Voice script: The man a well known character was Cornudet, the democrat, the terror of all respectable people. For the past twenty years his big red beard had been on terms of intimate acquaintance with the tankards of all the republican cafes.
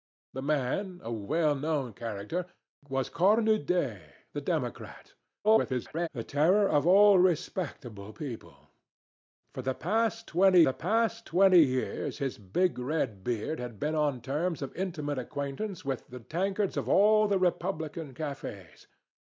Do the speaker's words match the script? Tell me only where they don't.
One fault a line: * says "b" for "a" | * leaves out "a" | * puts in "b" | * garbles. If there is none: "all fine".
* garbles
* puts in "the past twenty"